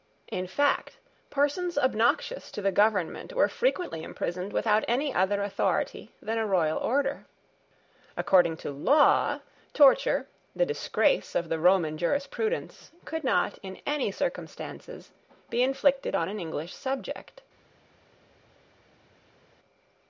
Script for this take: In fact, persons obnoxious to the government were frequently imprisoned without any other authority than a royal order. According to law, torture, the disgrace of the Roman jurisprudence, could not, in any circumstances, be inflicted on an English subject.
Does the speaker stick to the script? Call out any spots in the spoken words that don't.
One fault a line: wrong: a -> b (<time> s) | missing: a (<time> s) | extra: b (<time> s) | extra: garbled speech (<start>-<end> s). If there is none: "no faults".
no faults